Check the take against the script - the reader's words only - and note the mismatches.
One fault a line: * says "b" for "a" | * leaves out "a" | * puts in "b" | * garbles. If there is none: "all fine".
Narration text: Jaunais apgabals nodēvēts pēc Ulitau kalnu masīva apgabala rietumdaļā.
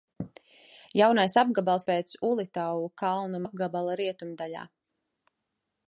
* leaves out "nodēvēts"
* leaves out "masīva"